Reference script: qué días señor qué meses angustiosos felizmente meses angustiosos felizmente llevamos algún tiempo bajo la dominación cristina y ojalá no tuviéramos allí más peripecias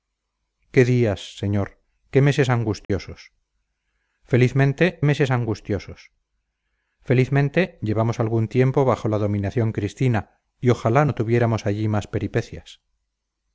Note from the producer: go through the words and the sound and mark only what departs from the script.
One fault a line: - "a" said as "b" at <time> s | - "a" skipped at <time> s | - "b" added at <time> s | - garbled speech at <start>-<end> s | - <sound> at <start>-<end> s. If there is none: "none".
- dropout at 2.8-2.9 s